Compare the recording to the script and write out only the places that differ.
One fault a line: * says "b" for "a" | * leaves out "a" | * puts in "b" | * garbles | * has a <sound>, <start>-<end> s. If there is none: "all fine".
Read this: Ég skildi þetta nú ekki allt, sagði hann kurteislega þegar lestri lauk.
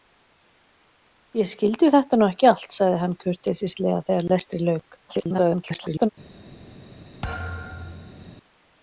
* garbles
* has a thud, 7.2-8.3 s